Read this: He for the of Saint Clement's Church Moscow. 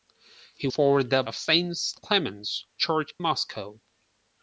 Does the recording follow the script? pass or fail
pass